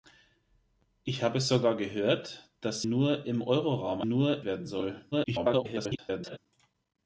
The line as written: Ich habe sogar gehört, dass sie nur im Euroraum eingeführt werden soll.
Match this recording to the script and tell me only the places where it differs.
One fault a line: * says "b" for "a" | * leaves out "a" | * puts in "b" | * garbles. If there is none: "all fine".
* leaves out "sie"
* says "nur" for "eingeführt"
* garbles